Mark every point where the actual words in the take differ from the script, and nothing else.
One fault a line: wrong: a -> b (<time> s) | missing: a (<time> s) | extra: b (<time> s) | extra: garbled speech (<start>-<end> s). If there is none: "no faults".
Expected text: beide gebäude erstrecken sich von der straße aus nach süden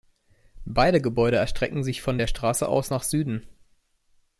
no faults